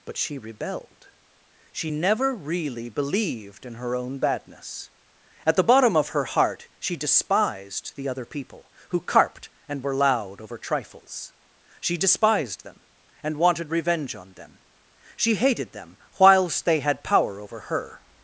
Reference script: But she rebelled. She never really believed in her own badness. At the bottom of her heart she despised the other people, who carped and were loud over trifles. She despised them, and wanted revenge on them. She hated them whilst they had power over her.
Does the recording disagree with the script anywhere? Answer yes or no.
no